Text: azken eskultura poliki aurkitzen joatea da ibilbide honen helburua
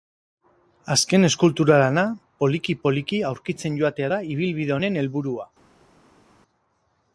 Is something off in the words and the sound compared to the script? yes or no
yes